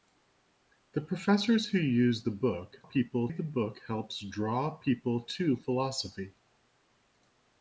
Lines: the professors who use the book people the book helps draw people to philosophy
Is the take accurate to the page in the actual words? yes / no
yes